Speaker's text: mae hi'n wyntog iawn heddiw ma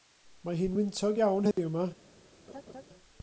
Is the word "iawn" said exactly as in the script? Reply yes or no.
yes